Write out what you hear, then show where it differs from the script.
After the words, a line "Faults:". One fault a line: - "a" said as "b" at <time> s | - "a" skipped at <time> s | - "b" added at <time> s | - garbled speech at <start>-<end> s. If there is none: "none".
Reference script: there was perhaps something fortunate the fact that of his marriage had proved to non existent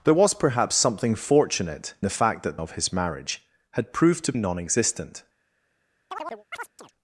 there was perhaps something fortunate the fact that of his marriage had proved to non existent
Faults:
none